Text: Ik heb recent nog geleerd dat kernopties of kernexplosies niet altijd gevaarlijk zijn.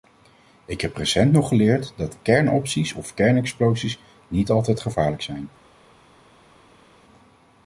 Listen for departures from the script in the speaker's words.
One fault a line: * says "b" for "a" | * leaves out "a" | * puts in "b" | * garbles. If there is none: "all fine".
all fine